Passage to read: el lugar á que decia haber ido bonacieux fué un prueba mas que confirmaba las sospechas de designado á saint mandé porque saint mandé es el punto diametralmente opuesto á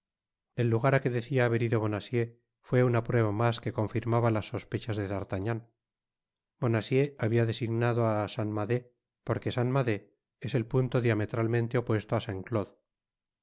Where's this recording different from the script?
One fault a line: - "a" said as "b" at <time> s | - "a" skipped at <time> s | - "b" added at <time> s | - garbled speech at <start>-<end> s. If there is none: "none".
- "un" said as "una" at 2.9 s
- "d'artagnan bonacieux habia" added at 5.1 s